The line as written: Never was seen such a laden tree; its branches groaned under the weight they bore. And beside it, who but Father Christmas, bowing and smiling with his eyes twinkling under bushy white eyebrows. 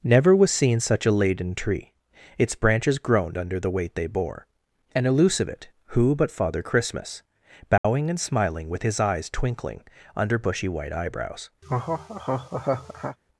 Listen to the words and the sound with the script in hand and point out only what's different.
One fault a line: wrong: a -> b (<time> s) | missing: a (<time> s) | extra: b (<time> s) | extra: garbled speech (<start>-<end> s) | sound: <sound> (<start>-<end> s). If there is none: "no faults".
wrong: beside -> elusive (5.0 s)
sound: dropout (7.8-7.8 s)
sound: laugh (11.6-13.2 s)